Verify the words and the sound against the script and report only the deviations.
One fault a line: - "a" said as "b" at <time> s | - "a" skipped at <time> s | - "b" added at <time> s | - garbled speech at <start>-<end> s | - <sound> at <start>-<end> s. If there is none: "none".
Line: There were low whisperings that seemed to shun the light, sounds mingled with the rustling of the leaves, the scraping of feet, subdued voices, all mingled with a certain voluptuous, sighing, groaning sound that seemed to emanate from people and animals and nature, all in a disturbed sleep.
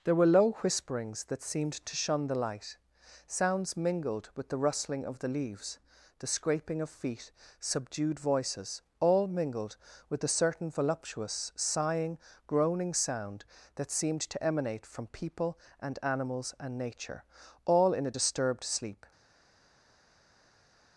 none